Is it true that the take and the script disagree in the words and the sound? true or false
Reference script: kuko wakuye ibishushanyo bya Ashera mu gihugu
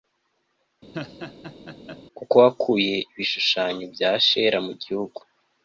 true